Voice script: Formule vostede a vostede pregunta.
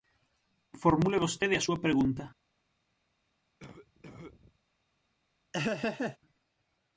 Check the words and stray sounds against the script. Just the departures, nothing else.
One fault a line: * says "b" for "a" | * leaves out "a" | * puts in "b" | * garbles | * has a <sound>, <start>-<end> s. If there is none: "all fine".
* says "súa" for "vostede"
* has a cough, 3.6-4.6 s
* has a laugh, 5.5-6.2 s